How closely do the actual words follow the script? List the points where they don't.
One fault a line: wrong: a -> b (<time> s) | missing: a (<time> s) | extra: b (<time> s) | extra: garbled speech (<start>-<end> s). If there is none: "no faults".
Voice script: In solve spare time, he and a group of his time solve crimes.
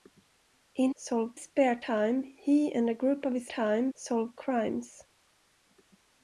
no faults